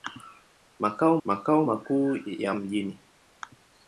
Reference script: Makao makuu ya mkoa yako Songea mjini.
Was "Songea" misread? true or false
true